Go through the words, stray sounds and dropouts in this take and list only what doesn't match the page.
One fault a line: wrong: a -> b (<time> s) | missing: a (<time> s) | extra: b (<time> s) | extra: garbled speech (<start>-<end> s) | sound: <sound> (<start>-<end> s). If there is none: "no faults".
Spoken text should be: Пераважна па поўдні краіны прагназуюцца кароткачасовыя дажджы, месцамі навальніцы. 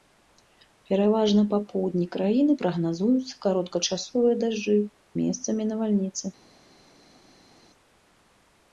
no faults